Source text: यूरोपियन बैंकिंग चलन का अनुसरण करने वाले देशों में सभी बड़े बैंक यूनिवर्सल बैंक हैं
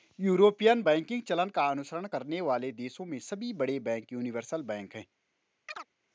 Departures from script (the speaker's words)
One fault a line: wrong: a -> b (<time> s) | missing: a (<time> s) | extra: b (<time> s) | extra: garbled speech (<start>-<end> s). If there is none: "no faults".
no faults